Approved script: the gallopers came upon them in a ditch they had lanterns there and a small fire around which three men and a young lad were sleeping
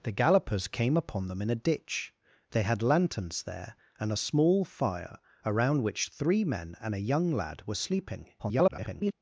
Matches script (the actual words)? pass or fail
fail